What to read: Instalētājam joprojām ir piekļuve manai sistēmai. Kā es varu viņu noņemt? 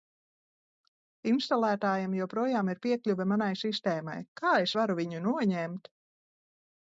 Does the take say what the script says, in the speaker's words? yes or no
yes